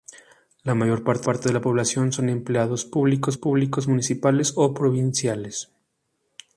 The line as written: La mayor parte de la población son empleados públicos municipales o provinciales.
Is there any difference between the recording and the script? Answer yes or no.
yes